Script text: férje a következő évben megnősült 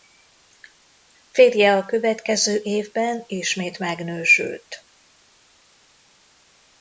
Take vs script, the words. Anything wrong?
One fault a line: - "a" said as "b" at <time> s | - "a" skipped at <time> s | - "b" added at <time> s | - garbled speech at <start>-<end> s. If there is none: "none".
- "ismét" added at 3.3 s